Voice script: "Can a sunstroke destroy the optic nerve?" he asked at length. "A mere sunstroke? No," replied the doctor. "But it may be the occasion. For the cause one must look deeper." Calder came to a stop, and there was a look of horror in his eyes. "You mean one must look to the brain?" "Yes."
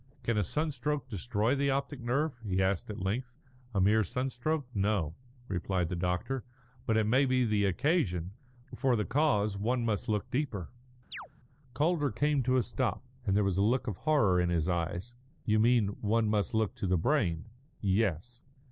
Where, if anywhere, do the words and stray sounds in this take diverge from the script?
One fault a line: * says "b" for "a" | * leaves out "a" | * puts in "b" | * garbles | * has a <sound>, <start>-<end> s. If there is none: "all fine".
* has a chirp, 11.1-11.3 s